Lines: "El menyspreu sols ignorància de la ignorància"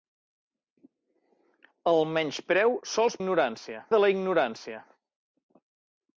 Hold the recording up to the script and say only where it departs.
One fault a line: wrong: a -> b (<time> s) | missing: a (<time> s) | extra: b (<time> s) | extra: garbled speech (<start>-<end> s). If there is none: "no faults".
no faults